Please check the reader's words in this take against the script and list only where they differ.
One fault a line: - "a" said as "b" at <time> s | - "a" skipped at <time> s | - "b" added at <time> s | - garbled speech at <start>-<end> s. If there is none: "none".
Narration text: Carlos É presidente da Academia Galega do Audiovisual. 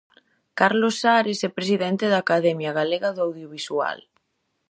- "Ares" added at 1.2 s